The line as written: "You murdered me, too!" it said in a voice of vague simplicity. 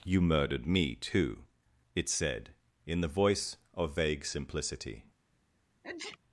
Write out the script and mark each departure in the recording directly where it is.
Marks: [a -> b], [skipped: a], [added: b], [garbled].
"You murdered me, too!" it said in [a -> the] voice of vague simplicity.